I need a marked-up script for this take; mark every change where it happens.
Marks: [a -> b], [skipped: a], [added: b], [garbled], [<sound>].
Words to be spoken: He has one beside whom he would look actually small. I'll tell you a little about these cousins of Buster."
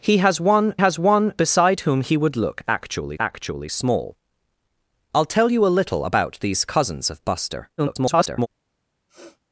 He has one [added: has one] beside whom he would look actually [added: actually] small. I'll tell you a little about these cousins of Buster." [garbled] [sniff]